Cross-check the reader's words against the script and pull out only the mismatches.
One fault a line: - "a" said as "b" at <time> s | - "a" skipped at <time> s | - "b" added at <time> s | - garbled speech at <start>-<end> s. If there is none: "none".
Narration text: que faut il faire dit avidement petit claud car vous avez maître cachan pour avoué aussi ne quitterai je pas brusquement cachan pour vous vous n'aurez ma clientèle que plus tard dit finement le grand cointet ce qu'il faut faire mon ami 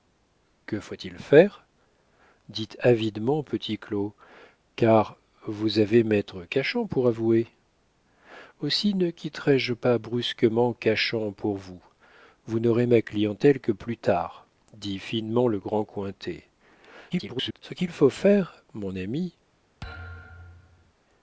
- garbled speech at 17.1-17.6 s